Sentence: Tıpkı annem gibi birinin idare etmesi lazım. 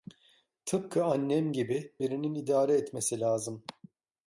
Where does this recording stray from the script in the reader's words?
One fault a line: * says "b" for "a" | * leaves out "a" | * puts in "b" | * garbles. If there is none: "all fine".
all fine